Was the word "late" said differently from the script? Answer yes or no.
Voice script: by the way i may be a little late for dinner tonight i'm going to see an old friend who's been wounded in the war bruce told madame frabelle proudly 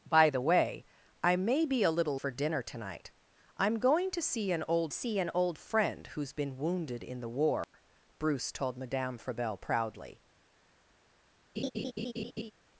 yes